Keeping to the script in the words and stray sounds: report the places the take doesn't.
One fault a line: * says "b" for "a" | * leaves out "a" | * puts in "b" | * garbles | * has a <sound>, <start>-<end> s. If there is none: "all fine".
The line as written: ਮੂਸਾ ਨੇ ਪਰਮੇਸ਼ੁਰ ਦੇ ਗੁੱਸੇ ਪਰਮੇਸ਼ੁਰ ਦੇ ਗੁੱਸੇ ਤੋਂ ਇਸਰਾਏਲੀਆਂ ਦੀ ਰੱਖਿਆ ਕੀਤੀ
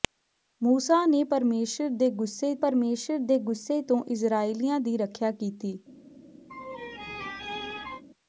* has a laugh, 6.5-8.0 s